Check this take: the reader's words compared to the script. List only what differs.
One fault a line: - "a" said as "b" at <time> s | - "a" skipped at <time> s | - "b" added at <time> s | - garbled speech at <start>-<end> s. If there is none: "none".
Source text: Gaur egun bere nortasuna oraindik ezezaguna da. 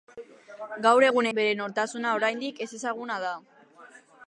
none